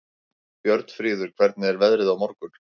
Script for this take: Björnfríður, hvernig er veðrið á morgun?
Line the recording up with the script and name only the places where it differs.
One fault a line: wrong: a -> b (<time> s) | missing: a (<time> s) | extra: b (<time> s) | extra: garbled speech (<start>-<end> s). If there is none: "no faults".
no faults